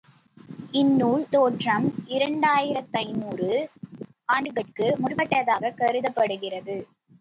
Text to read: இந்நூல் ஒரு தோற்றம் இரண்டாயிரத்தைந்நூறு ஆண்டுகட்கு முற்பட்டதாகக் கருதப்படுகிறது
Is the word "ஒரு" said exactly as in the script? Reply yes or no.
no